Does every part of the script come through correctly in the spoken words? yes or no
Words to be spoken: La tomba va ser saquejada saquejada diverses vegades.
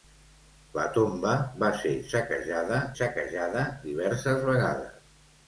yes